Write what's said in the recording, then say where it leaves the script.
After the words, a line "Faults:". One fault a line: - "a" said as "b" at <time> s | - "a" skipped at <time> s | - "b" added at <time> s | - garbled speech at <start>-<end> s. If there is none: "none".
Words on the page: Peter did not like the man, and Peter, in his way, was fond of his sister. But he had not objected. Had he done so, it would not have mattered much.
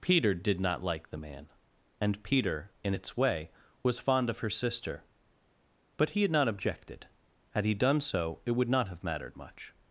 Peter did not like the man, and Peter, in its way, was fond of her sister. But he had not objected. Had he done so, it would not have mattered much.
Faults:
- "his" said as "its" at 2.9 s
- "his" said as "her" at 4.4 s